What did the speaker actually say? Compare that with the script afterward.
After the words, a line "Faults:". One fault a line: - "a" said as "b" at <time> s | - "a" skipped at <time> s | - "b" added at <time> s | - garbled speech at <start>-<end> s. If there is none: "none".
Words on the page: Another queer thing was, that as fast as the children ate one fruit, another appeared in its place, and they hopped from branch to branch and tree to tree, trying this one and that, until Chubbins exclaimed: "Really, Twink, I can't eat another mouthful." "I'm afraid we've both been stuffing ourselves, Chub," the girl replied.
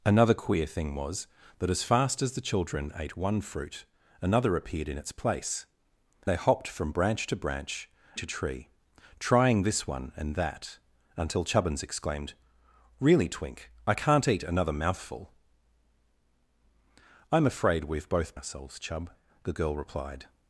Another queer thing was, that as fast as the children ate one fruit, another appeared in its place, they hopped from branch to branch to tree, trying this one and that, until Chubbins exclaimed: "Really, Twink, I can't eat another mouthful." "I'm afraid we've both ourselves, Chub," the girl replied.
Faults:
- "and" skipped at 5.7 s
- "and tree" skipped at 7.9 s
- "been stuffing" skipped at 18.4 s